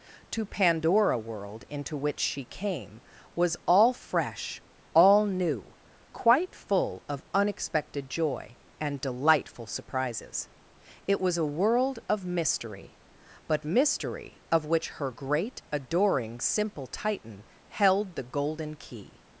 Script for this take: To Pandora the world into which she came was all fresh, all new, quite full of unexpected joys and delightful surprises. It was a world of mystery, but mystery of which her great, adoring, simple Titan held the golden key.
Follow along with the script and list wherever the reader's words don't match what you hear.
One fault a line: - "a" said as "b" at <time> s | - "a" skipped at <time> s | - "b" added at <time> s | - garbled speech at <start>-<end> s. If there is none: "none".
- "the" skipped at 1.2 s
- "joys" said as "joy" at 8.1 s